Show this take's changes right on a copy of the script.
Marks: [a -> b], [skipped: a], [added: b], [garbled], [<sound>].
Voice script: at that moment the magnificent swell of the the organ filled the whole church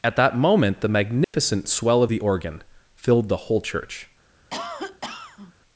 at that moment the magnificent [dropout] swell of the [skipped: the] organ filled the whole church [cough]